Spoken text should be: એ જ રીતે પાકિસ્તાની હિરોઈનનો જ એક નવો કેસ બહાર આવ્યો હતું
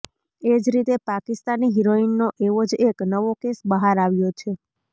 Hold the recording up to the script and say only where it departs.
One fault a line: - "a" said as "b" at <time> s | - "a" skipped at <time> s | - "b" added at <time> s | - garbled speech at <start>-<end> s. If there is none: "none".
- "એવો" added at 2.5 s
- "હતું" said as "છે" at 4.3 s